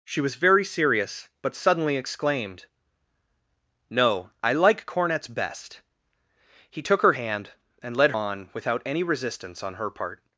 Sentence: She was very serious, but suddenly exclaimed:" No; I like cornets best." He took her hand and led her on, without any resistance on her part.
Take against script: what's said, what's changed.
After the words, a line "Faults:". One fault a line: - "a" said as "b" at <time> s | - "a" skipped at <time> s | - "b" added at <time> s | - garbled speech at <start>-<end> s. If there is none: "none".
She was very serious, but suddenly exclaimed:" No; I like cornets best." He took her hand and led on, without any resistance on her part.
Faults:
- "her" skipped at 8.1 s